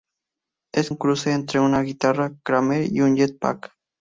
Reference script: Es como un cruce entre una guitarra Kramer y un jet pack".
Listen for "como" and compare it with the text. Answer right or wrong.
wrong